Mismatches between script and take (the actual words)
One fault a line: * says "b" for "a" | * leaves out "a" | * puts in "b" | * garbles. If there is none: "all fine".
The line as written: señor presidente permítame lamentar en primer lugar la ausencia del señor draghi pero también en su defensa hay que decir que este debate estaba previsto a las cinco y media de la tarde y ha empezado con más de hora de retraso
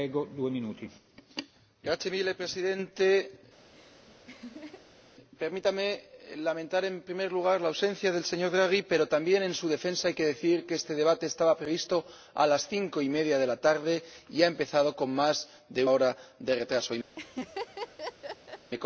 all fine